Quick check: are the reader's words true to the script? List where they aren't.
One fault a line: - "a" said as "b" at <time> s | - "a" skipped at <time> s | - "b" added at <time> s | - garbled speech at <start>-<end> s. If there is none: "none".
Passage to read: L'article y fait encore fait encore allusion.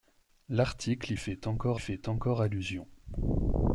none